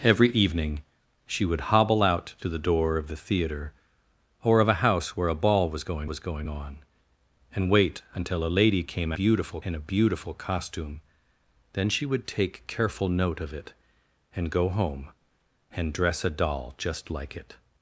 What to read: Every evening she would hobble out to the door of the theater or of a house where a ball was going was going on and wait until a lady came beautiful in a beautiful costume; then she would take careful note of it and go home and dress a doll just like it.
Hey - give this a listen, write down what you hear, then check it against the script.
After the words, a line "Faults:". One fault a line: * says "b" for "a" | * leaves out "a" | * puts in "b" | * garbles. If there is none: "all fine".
Every evening she would hobble out to the door of the theater or of a house where a ball was going was going on and wait until a lady came beautiful in a beautiful costume; then she would take careful note of it and go home and dress a doll just like it.
Faults:
all fine